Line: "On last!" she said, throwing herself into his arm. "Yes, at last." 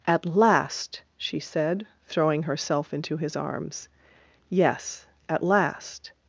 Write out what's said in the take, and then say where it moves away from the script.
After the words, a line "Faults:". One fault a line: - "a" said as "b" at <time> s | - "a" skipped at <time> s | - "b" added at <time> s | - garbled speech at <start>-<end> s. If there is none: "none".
"At last!" she said, throwing herself into his arms. "Yes, at last."
Faults:
- "On" said as "At" at 0.1 s
- "arm" said as "arms" at 3.4 s